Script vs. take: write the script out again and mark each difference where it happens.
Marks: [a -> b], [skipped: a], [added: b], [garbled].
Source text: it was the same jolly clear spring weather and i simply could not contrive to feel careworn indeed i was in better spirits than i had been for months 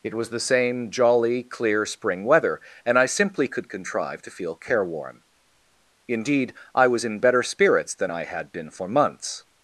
it was the same jolly clear spring weather and i simply could [skipped: not] contrive to feel careworn indeed i was in better spirits than i had been for months